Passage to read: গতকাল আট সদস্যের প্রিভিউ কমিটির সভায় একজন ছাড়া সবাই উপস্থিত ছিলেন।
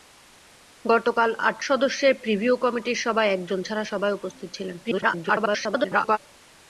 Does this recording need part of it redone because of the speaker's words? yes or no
yes